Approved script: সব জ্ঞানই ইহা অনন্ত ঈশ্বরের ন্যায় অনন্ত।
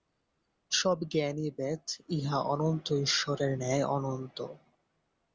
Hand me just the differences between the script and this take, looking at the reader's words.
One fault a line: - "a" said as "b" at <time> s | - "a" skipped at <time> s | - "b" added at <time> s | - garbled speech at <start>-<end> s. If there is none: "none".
- "বেদ" added at 1.5 s